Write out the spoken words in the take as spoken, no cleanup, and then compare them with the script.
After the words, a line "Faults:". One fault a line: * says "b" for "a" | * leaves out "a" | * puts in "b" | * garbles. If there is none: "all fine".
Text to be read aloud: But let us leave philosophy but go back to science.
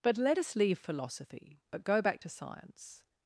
But let us leave philosophy but go back to science.
Faults:
all fine